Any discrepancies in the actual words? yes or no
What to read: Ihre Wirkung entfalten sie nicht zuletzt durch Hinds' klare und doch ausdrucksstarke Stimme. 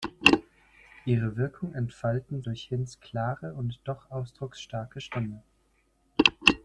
yes